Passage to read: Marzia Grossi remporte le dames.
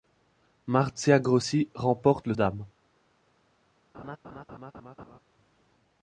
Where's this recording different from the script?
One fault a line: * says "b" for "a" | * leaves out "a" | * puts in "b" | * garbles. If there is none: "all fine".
all fine